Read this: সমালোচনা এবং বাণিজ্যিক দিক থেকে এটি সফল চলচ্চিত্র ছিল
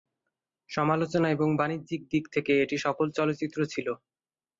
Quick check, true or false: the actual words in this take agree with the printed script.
true